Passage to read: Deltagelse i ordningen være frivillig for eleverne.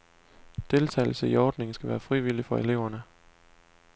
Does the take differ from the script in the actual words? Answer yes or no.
yes